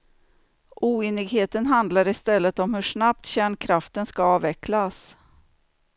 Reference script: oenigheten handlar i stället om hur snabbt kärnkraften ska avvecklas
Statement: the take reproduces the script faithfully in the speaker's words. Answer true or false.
true